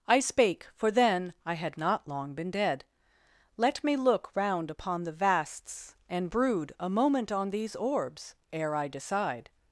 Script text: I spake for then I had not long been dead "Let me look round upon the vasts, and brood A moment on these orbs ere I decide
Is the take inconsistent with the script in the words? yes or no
no